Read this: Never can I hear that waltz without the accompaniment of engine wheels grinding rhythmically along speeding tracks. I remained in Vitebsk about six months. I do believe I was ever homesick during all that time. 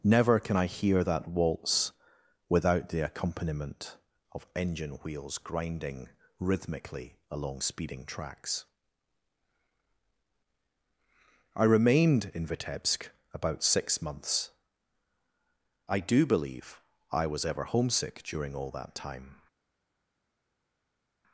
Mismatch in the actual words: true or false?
false